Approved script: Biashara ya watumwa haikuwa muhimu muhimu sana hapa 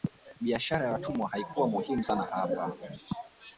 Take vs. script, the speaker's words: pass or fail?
fail